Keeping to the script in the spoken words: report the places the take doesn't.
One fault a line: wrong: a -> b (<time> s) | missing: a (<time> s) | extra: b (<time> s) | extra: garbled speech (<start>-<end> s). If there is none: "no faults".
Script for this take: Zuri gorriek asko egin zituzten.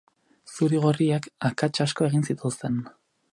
extra: akats (1.5 s)